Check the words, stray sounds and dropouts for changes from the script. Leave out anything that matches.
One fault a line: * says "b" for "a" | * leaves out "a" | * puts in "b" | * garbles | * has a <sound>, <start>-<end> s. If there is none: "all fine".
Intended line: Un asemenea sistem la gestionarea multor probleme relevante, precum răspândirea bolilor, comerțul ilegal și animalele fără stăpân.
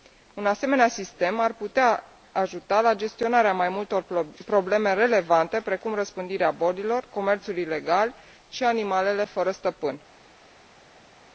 * puts in "ar putea ajuta"
* puts in "mai"